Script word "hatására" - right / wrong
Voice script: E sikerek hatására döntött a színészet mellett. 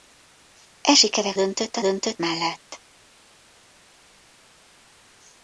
wrong